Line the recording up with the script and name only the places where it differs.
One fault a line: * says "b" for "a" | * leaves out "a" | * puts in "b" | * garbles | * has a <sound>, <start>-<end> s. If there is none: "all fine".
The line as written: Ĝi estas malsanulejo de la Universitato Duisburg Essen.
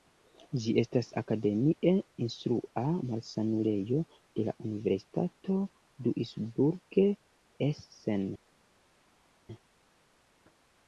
* puts in "akademie instrua"